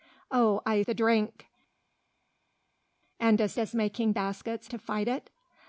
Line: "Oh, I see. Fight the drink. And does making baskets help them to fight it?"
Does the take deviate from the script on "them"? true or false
true